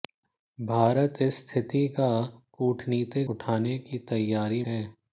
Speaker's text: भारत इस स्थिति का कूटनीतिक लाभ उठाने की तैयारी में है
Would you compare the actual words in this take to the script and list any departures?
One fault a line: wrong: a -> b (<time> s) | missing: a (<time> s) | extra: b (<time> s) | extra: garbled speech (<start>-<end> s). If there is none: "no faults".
missing: लाभ (3.3 s)
missing: में (4.6 s)